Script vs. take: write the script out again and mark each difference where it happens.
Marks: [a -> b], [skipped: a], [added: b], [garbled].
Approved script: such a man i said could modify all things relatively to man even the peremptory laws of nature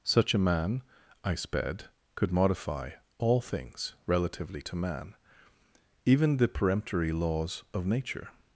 such a man i [said -> sped] could modify all things relatively to man even the peremptory laws of nature